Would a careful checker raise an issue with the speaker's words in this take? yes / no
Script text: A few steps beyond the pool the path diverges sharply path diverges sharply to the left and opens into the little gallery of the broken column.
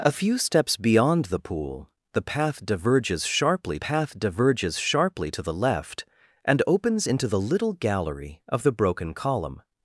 no